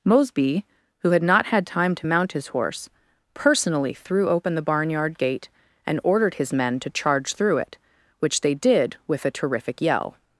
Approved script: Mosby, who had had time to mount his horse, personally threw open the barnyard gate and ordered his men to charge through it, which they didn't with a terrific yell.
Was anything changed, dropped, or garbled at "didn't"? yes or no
yes